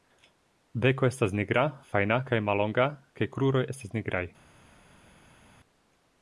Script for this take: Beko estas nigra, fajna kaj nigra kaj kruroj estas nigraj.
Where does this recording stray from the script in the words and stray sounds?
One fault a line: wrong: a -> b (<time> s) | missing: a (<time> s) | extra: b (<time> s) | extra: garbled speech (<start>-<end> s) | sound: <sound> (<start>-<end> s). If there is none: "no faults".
wrong: nigra -> mallonga (2.5 s)